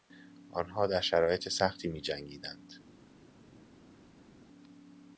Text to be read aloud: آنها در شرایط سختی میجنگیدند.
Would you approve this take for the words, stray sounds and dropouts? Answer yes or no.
yes